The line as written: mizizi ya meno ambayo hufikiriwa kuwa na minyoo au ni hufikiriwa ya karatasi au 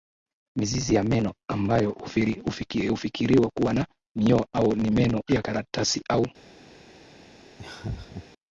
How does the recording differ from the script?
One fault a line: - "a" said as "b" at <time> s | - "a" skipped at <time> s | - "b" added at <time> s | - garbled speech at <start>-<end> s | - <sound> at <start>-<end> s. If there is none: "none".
- "hufikiriwa" said as "meno" at 4.9 s
- laugh at 7.6-8.3 s